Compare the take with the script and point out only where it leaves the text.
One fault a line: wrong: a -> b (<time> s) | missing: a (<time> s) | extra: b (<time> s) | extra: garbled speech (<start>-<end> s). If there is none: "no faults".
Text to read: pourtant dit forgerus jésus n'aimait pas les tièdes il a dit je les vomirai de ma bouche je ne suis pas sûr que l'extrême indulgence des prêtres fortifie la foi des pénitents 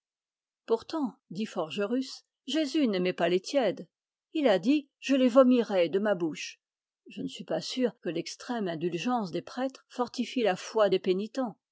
no faults